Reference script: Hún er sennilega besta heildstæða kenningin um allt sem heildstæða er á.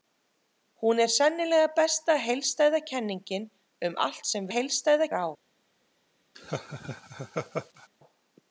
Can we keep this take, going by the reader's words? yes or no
yes